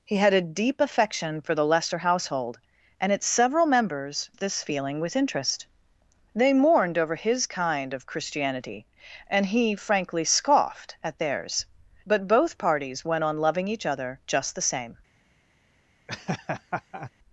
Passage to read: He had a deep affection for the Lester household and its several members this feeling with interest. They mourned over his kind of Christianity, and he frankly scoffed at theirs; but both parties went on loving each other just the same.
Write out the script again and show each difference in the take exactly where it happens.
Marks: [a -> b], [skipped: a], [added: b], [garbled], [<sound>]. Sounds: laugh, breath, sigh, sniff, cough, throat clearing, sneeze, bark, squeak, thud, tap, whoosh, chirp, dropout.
He had a deep affection for the Lester household and its several members this feeling with interest. They mourned over his kind of Christianity, and he frankly scoffed at theirs; but both parties went on loving each other just the same. [laugh]